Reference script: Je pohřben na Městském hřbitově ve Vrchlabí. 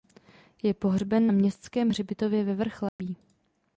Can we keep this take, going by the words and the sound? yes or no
no